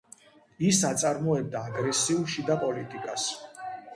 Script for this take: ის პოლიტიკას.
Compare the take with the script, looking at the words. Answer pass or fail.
fail